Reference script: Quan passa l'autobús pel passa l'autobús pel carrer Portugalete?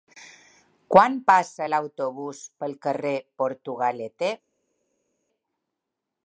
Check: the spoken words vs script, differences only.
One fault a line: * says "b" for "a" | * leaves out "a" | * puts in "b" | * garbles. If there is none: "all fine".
* leaves out "passa l'autobús pel"